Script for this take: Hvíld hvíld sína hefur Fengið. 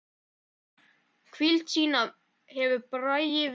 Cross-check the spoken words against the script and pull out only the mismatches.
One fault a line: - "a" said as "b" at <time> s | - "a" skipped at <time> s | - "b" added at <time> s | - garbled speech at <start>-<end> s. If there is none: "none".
- "hvíld" skipped at 1.7 s
- "Bragi" added at 2.9 s